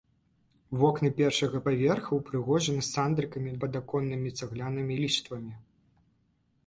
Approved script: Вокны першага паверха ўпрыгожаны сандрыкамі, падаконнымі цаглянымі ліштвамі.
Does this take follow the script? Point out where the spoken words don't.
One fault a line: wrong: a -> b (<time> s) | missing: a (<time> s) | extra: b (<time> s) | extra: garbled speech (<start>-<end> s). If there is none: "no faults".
no faults